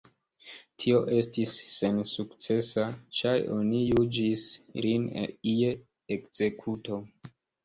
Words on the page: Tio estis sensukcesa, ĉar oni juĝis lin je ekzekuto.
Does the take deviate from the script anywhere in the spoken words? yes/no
no